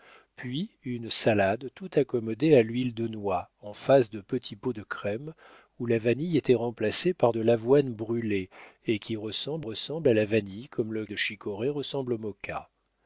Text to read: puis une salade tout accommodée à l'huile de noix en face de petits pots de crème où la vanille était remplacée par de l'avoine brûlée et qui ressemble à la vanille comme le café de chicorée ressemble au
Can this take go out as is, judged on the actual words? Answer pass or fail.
fail